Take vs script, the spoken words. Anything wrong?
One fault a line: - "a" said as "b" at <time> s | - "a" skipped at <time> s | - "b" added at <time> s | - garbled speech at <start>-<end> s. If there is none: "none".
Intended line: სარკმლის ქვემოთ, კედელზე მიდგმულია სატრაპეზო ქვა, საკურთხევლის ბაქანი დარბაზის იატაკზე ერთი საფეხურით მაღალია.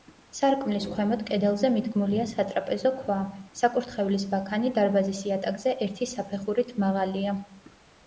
none